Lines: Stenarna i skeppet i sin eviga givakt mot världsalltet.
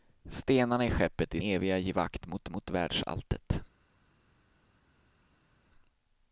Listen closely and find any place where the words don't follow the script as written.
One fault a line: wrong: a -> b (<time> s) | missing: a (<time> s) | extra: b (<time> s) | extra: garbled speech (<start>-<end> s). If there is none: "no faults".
missing: sin (1.4 s)
extra: mot (2.5 s)